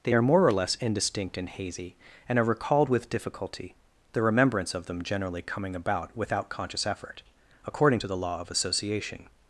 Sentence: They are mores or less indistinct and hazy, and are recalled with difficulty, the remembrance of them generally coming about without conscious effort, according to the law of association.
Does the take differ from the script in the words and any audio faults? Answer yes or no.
yes